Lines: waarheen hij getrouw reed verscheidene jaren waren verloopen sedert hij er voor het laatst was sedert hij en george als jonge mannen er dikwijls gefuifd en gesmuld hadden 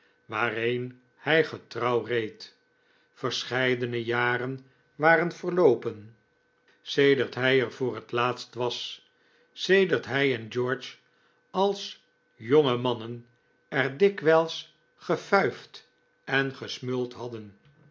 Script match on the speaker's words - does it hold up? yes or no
yes